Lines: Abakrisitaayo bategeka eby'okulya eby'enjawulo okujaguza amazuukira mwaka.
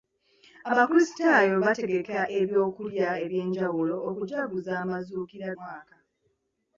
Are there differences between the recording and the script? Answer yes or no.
no